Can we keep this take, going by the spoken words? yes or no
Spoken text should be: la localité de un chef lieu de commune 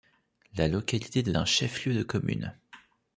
yes